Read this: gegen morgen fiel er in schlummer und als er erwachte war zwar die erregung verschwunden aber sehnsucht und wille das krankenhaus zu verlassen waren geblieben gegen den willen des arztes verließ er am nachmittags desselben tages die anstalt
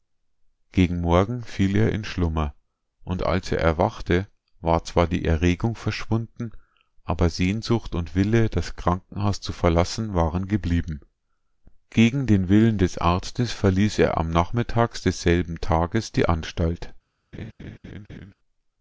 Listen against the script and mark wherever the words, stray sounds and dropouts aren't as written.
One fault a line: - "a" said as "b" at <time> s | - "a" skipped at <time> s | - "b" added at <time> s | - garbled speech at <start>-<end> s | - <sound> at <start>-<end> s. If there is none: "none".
- laugh at 17.3-18.3 s